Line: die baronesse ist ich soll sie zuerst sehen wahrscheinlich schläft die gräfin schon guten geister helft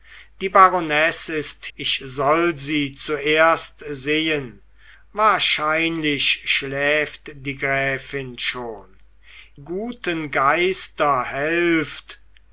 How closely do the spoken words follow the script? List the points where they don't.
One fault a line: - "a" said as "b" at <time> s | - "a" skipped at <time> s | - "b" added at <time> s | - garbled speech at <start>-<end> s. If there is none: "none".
none